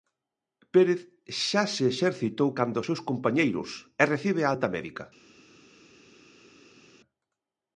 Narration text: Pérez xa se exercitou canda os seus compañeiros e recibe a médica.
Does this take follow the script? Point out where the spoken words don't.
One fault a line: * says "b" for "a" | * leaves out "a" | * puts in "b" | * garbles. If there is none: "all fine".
* puts in "alta"